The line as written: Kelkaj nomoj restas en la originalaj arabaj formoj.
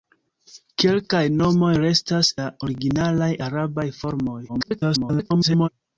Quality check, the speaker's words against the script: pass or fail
fail